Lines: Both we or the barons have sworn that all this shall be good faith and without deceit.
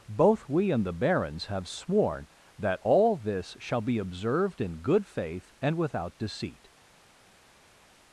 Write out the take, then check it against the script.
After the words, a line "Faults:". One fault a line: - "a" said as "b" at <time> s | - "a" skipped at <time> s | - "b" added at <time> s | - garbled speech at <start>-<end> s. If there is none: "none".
Both we and the barons have sworn that all this shall be observed in good faith and without deceit.
Faults:
- "or" said as "and" at 0.7 s
- "observed in" added at 4.0 s